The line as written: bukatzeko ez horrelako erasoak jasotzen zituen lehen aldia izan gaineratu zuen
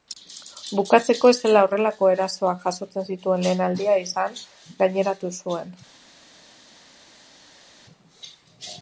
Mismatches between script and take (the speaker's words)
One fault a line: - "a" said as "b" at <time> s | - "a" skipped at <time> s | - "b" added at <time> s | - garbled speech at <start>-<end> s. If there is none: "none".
- "zela" added at 1.5 s